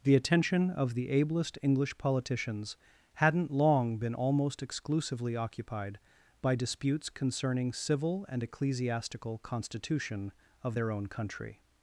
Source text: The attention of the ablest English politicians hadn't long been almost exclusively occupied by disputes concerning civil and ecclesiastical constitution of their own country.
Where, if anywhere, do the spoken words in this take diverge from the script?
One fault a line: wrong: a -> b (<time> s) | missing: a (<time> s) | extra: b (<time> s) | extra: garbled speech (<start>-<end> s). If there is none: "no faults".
no faults